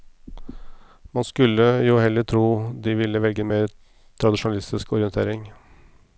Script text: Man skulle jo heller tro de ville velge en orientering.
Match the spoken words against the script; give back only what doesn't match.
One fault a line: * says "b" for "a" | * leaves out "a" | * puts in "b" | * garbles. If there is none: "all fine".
* puts in "mer tradisjonalistisk"